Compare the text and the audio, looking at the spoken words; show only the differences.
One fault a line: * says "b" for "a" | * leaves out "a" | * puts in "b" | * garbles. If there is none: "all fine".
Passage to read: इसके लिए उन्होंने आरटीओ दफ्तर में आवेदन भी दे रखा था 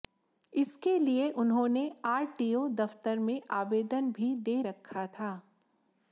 all fine